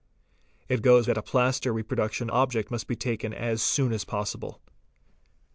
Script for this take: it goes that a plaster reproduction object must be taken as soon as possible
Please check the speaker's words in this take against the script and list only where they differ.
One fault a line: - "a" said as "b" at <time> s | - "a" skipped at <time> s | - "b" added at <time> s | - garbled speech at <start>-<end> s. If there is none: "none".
none